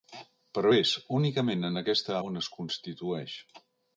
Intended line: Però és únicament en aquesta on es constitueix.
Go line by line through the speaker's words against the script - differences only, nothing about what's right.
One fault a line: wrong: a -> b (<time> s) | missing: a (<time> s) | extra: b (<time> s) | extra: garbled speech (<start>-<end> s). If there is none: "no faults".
no faults